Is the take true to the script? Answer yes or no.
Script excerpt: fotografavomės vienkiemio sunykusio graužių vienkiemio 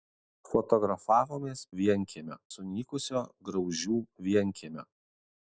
yes